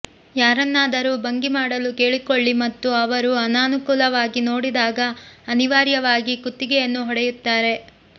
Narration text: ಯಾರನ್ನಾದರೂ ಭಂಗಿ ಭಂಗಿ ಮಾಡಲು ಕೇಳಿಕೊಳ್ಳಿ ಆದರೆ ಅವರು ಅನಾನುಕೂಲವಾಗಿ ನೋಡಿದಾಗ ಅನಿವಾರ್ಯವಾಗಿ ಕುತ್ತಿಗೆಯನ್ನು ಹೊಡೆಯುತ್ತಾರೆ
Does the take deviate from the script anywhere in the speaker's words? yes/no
yes